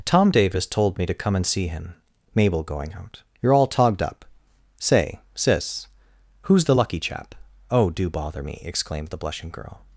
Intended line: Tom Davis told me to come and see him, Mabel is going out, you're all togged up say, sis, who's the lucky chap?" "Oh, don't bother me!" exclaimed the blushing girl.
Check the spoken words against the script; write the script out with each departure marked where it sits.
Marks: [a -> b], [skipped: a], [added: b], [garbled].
Tom Davis told me to come and see him, Mabel [skipped: is] going out, you're all togged up say, sis, who's the lucky chap?" "Oh, [don't -> do] bother me!" exclaimed the blushing girl.